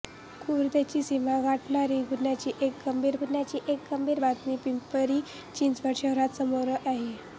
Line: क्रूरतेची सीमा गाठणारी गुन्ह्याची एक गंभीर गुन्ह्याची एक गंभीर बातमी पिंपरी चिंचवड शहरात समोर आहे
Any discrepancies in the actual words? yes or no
no